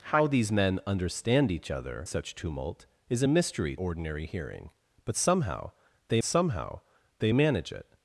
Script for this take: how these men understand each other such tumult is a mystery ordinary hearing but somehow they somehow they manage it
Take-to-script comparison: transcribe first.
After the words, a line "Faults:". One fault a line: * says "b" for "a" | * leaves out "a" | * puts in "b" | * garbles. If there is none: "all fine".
how these men understand each other such tumult is a mystery ordinary hearing but somehow they somehow they manage it
Faults:
all fine